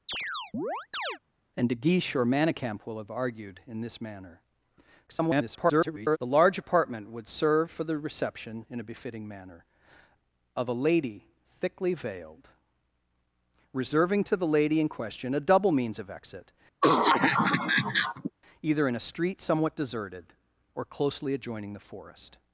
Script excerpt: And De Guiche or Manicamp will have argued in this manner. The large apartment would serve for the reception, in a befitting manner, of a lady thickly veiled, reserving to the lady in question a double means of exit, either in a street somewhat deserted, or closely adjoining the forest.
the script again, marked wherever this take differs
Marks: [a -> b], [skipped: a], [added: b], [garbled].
And De Guiche or Manicamp will have argued in this manner. [garbled] The large apartment would serve for the reception, in a befitting manner, of a lady thickly veiled, reserving to the lady in question a double means of exit, either in a street somewhat deserted, or closely adjoining the forest.